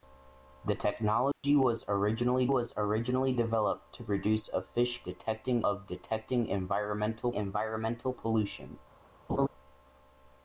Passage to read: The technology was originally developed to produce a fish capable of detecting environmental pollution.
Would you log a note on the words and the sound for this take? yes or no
yes